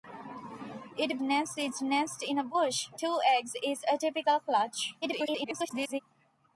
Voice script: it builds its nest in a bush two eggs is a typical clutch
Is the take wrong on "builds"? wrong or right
wrong